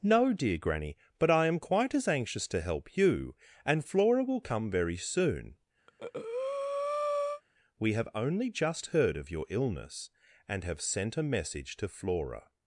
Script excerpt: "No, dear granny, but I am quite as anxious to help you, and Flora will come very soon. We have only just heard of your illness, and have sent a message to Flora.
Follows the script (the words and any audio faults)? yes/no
no